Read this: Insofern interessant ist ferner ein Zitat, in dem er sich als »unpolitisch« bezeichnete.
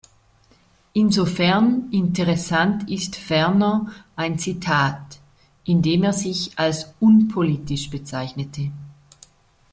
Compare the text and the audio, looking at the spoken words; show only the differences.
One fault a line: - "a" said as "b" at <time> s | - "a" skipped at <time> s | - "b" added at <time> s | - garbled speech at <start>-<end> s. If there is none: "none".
none